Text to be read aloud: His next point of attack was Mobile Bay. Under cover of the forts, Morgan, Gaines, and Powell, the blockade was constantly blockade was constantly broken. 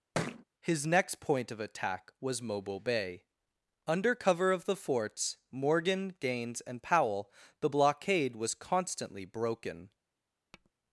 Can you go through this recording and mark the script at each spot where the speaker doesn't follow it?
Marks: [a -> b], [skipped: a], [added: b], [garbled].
His next point of attack was Mobile Bay. Under cover of the forts, Morgan, Gaines, and Powell, the blockade was constantly [skipped: blockade was constantly] broken.